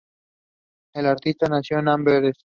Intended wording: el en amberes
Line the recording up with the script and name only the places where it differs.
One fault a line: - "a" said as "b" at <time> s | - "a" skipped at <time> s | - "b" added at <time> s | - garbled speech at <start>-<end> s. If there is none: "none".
- "artista nació" added at 1.1 s